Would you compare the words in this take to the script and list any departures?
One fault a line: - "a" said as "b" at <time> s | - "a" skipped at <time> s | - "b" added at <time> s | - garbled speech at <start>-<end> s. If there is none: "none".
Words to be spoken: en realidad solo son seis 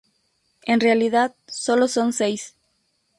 none